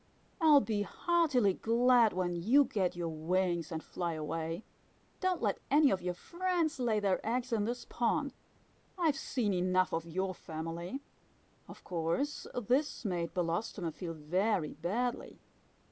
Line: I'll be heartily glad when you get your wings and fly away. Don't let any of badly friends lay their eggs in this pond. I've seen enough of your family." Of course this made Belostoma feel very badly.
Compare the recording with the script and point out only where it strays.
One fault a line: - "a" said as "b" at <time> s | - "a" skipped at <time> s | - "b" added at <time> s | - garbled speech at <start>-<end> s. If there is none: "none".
- "badly" said as "your" at 6.0 s